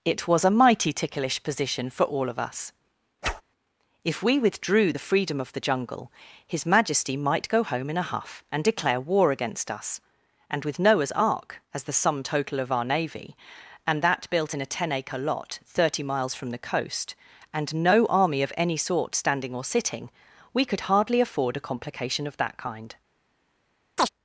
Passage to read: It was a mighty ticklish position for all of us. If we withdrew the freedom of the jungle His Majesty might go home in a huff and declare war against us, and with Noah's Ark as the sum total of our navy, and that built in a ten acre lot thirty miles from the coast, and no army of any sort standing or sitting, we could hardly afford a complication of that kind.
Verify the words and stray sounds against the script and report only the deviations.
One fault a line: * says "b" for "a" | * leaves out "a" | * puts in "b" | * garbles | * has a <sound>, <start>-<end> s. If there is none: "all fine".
* has a whoosh, 3.2-3.4 s
* has a chirp, 24.0-24.1 s